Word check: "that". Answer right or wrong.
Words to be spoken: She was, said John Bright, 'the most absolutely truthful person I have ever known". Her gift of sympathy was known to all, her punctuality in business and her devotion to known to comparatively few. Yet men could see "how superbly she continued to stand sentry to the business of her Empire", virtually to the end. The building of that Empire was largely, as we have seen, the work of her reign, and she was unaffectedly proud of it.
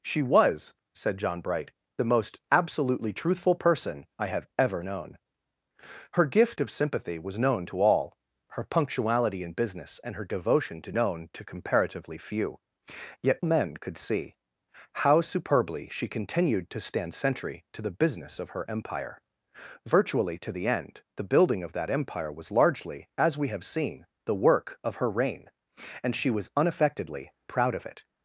right